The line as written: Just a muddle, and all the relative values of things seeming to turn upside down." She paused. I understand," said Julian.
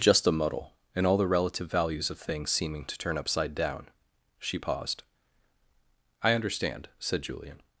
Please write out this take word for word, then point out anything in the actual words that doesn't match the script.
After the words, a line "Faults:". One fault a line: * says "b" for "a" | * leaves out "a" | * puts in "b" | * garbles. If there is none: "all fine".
Just a muddle, and all the relative values of things seeming to turn upside down." She paused. I understand," said Julian.
Faults:
all fine